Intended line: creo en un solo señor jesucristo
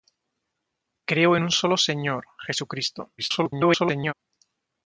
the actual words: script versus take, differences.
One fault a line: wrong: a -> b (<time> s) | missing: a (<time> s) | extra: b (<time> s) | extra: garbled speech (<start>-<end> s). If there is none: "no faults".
extra: garbled speech (3.2-4.1 s)